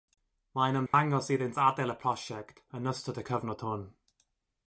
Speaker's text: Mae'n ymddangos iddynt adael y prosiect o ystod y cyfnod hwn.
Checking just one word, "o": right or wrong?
wrong